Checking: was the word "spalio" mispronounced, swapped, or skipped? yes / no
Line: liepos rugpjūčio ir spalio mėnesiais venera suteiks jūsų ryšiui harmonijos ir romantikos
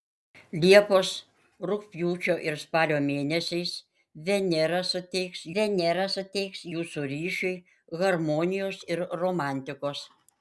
no